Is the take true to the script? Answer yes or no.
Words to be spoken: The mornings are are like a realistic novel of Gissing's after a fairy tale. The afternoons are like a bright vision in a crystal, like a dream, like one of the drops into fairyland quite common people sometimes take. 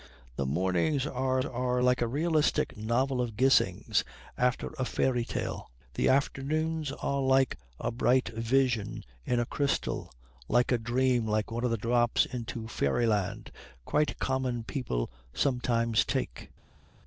yes